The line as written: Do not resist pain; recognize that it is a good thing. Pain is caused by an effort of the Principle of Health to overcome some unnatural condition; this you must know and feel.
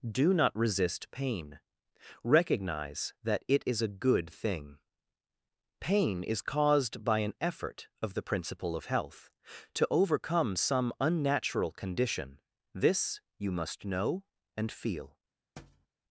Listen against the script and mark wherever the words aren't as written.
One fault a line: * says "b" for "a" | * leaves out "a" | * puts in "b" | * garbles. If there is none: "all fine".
all fine